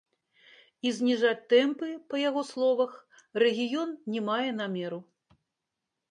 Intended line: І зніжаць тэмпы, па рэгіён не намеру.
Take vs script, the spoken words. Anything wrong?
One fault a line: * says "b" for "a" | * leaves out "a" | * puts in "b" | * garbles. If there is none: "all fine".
* puts in "яго словах"
* puts in "мае"